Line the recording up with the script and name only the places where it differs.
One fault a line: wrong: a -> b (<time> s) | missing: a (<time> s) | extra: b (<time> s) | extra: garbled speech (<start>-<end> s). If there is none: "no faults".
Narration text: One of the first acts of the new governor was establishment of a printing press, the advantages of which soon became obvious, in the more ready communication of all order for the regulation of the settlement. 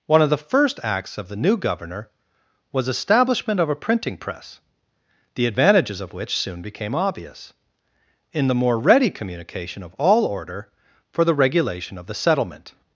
no faults